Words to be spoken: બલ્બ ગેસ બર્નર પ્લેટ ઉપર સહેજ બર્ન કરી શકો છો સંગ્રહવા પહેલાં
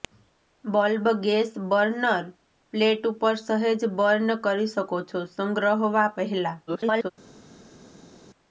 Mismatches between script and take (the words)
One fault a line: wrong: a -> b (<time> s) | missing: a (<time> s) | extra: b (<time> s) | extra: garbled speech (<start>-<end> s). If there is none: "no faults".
extra: garbled speech (6.7-7.1 s)